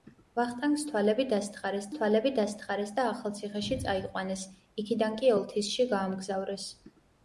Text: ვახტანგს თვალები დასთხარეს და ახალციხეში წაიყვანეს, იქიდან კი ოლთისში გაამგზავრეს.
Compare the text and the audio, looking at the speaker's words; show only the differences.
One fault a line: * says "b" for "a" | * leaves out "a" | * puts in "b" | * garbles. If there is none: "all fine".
* puts in "თვალები დასთხარეს"